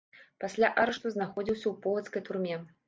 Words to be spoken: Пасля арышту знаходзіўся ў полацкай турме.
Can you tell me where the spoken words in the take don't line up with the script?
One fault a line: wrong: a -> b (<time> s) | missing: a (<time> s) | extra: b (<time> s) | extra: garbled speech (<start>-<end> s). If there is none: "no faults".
no faults